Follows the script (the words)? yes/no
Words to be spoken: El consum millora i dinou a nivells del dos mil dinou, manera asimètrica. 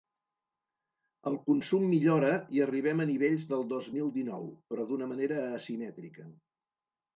no